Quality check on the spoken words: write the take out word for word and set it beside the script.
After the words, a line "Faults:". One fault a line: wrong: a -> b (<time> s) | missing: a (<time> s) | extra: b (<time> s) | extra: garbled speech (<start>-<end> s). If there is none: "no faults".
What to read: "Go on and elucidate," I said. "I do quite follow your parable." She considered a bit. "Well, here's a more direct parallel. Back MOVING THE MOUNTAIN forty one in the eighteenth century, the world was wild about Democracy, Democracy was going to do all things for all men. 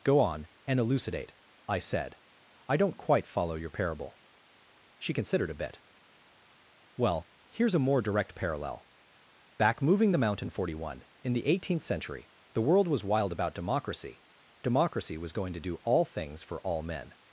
"Go on and elucidate," I said. "I don't quite follow your parable." She considered a bit. "Well, here's a more direct parallel. Back MOVING THE MOUNTAIN forty one in the eighteenth century, the world was wild about Democracy, Democracy was going to do all things for all men.
Faults:
wrong: do -> don't (2.8 s)